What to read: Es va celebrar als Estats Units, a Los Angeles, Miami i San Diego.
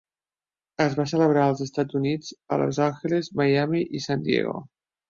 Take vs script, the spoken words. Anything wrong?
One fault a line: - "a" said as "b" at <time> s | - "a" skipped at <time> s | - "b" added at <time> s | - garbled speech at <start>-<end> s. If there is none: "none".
none